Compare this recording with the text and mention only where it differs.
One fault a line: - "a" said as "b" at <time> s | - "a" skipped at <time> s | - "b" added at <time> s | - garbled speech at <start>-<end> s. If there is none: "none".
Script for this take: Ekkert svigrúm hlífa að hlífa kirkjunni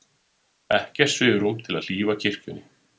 - "hlífa" said as "til" at 1.7 s